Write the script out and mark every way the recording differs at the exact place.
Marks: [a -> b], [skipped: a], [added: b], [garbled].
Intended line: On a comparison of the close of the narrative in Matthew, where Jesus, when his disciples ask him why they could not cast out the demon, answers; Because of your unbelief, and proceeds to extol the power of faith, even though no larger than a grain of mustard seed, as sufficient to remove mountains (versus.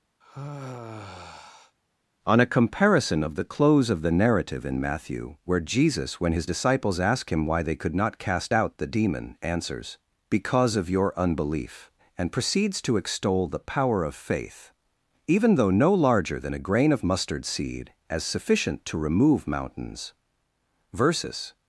On a comparison of the close of the narrative in Matthew, where Jesus, when his disciples ask him why they could not cast out the demon, answers; Because of your unbelief, and proceeds to extol the power of faith, even though no larger than a grain of mustard seed, as sufficient to remove mountains (versus.